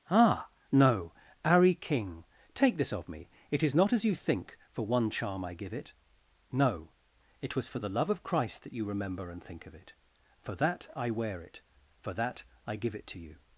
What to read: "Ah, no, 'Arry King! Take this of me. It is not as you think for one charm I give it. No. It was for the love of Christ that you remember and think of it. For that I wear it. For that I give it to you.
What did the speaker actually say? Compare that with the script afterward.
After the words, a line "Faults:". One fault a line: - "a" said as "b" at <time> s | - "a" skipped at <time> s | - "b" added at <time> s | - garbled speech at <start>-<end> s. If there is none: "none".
"Ah, no, 'Arry King! Take this of me. It is not as you think for one charm I give it. No. It was for the love of Christ that you remember and think of it. For that I wear it. For that I give it to you.
Faults:
none